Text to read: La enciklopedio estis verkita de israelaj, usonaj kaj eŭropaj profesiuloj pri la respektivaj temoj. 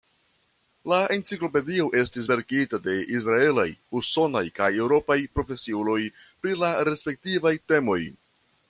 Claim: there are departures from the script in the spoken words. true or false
false